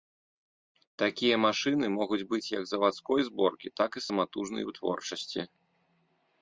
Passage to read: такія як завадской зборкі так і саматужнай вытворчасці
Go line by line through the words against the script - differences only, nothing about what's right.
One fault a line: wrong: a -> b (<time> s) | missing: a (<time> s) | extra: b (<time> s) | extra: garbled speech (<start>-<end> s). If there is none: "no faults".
extra: машыны могуць быць (1.5 s)